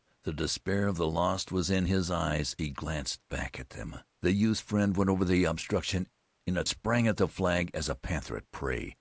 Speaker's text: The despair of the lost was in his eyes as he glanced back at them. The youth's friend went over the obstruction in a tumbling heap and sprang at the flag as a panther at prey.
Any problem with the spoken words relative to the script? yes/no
yes